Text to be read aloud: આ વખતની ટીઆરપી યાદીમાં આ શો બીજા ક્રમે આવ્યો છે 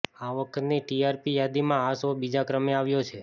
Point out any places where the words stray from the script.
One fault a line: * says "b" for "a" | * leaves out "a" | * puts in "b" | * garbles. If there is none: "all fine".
all fine